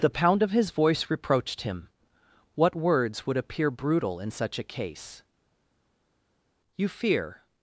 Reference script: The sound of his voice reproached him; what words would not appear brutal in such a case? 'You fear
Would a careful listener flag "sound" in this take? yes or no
yes